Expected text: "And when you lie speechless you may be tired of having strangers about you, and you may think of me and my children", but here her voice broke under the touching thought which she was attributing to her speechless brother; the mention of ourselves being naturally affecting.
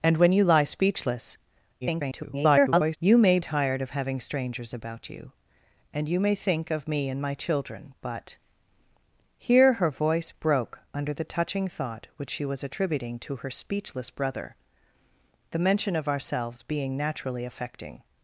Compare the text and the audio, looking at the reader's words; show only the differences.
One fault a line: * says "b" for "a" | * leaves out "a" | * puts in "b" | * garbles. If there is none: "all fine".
* garbles
* leaves out "be"